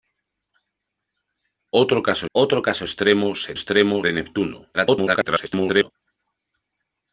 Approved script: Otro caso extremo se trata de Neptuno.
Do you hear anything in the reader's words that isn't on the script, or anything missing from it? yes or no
yes